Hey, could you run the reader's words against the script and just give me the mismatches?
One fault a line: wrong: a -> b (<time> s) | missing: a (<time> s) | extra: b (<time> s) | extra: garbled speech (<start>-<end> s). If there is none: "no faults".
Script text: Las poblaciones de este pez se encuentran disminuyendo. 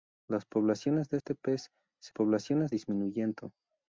wrong: encuentran -> poblaciones (2.1 s)